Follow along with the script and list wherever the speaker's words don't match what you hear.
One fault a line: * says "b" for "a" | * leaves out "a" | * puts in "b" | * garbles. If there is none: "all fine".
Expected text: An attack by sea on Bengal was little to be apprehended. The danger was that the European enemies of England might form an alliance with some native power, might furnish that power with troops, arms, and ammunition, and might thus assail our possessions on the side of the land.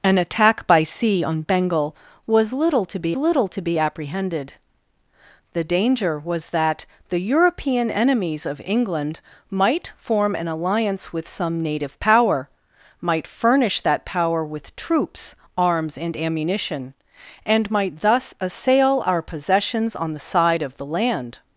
* puts in "little to be"